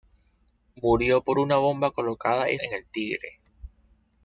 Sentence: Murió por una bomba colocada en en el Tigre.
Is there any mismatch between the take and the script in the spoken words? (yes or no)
no